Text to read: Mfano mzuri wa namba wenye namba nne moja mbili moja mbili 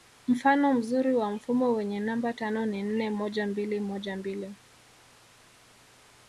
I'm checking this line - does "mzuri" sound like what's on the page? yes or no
yes